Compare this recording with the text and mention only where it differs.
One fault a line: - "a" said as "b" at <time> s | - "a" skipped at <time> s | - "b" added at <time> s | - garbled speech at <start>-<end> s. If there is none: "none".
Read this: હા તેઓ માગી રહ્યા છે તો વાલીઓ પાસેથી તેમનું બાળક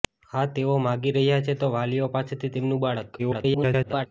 - garbled speech at 3.2-4.1 s